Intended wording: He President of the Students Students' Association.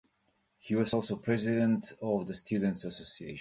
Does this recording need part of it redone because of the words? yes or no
yes